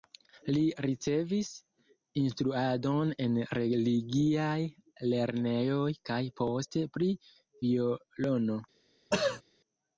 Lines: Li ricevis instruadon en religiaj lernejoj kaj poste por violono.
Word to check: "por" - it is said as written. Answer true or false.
false